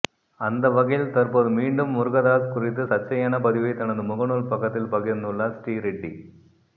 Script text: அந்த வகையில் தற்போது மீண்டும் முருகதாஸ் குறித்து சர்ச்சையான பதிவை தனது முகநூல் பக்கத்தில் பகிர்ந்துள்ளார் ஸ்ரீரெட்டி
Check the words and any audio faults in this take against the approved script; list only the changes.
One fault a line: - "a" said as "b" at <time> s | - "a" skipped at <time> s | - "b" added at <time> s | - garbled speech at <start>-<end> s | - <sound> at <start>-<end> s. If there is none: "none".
none